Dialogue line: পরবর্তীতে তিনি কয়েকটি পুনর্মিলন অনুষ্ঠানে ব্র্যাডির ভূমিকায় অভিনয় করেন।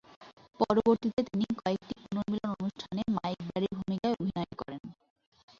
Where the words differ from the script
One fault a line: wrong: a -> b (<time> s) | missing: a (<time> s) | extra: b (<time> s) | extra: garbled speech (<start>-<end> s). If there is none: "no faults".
extra: মাইক (3.2 s)